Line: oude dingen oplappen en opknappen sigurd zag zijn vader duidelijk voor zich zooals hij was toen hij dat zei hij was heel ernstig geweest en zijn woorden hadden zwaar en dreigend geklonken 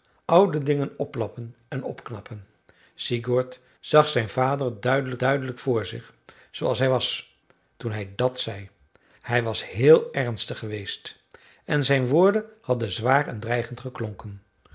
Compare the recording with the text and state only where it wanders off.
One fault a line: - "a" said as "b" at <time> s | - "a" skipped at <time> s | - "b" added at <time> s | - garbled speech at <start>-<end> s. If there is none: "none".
- "duidelijk" added at 5.2 s